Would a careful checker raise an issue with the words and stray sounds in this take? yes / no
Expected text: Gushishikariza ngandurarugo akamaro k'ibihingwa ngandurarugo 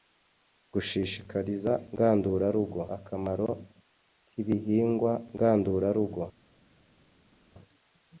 no